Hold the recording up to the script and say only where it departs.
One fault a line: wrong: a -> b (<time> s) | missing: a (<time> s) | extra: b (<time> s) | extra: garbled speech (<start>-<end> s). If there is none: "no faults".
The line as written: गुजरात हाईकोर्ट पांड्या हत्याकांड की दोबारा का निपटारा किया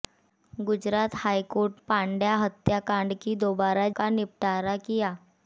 no faults